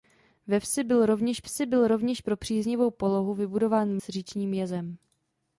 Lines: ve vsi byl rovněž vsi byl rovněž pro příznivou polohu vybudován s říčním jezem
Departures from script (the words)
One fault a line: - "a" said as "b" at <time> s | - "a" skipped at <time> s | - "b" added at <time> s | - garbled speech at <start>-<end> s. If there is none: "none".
none